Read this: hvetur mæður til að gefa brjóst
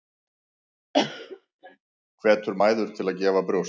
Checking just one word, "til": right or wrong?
right